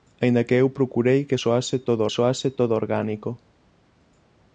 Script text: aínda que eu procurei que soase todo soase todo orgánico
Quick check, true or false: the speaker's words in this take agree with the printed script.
true